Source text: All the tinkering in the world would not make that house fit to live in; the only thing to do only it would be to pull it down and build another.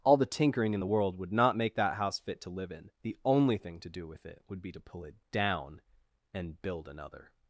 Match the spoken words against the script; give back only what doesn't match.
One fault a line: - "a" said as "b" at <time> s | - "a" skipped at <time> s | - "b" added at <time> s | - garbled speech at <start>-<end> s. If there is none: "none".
- "only" said as "with" at 4.1 s